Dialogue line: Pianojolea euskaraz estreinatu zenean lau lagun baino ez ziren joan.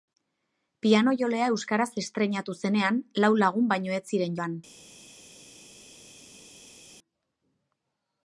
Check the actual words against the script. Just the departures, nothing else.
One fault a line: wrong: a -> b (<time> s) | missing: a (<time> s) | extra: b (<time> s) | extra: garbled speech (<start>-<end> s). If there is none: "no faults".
no faults